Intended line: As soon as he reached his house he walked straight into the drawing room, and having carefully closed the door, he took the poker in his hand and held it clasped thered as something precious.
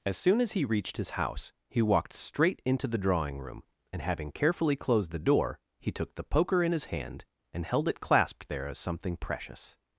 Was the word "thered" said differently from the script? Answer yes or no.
yes